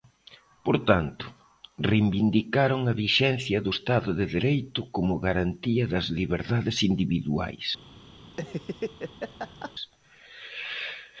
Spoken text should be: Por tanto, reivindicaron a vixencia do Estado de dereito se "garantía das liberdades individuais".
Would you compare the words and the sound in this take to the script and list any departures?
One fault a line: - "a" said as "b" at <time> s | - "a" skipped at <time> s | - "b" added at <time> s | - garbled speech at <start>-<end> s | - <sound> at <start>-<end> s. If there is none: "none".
- "se" said as "como" at 4.9 s
- laugh at 8.3-9.7 s